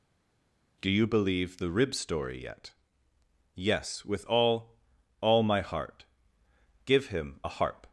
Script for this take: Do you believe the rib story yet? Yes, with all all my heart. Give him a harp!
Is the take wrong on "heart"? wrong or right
right